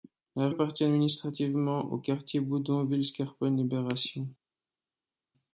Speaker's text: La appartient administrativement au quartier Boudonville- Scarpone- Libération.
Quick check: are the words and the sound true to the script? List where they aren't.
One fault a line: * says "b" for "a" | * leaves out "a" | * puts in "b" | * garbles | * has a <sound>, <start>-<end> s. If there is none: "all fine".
all fine